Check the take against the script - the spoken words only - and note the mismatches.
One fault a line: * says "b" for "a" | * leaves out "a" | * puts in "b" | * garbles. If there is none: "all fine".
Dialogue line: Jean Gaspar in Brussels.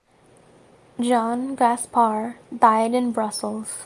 * puts in "died"